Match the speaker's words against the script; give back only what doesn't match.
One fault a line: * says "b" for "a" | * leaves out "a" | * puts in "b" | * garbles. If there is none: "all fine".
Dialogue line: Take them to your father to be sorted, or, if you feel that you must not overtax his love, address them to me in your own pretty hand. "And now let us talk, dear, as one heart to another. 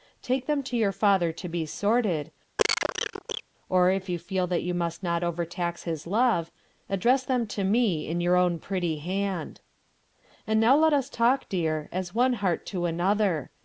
all fine